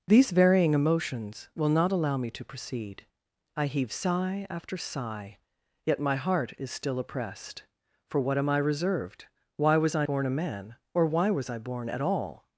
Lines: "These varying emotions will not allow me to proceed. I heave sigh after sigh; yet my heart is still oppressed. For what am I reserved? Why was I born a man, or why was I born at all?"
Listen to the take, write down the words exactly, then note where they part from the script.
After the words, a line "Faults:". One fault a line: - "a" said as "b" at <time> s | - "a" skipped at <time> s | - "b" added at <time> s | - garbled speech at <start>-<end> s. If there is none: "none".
"These varying emotions will not allow me to proceed. I heave sigh after sigh; yet my heart is still oppressed. For what am I reserved? Why was I born a man, or why was I born at all?"
Faults:
none